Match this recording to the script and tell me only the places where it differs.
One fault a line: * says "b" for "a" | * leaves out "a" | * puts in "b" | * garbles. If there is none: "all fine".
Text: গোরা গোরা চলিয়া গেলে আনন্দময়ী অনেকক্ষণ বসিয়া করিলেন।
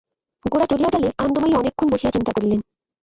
* leaves out "গোরা"
* puts in "চিন্তা"